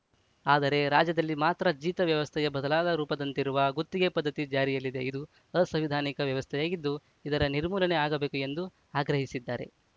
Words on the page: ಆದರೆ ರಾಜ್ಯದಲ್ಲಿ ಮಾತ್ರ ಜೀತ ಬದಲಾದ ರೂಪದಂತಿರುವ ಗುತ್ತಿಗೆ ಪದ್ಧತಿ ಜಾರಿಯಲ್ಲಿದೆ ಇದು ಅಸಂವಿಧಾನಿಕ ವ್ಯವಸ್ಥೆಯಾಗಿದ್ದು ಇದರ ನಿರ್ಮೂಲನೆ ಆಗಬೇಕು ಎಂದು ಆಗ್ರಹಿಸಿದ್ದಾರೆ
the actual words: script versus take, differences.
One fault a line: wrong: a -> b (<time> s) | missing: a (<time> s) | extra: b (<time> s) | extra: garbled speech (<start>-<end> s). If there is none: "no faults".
extra: ವ್ಯವಸ್ಥೆಯ (2.1 s)